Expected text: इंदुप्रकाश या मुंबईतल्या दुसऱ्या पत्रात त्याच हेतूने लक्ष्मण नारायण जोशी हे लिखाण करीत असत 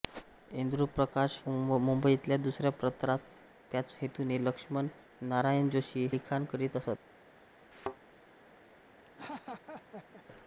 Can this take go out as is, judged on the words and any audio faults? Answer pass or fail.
fail